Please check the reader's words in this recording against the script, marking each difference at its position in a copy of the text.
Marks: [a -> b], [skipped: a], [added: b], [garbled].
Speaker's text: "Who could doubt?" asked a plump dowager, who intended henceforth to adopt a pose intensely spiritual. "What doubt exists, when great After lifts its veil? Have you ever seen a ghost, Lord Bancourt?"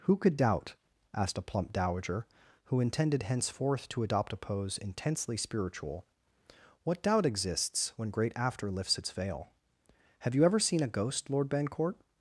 "Who could doubt?" asked a plump dowager, who intended henceforth to adopt a pose intensely spiritual. "What doubt exists, when great After lifts its veil? Have you ever seen a ghost, Lord Bancourt?"